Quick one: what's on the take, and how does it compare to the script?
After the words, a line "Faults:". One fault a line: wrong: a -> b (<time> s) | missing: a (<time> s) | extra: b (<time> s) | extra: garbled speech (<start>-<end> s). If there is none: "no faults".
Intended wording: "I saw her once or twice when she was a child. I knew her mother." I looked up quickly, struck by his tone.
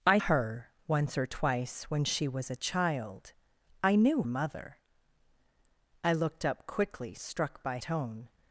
"I her once or twice when she was a child. I knew mother." I looked up quickly, struck by tone.
Faults:
missing: saw (0.2 s)
missing: her (4.2 s)
missing: his (7.8 s)